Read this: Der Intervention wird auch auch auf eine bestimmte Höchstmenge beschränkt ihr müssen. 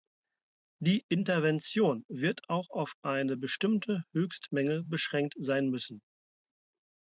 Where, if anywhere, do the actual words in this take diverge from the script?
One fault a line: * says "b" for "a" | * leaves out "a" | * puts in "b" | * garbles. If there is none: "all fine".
* says "Die" for "Der"
* leaves out "auch"
* says "sein" for "ihr"